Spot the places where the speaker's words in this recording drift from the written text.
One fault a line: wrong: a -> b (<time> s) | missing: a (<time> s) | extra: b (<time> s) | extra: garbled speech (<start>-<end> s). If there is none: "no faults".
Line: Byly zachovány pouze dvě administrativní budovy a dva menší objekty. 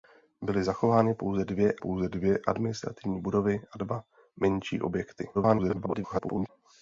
extra: pouze dvě (1.8 s)
extra: garbled speech (5.3-6.5 s)